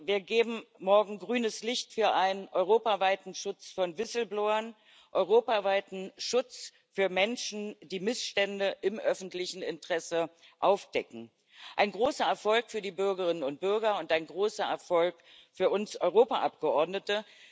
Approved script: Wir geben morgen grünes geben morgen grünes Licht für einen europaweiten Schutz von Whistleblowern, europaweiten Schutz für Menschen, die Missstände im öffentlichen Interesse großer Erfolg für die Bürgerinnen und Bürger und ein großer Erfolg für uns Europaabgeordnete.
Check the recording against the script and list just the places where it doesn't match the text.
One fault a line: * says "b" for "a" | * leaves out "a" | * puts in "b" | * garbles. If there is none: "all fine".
* leaves out "geben morgen grünes"
* puts in "aufdecken ein"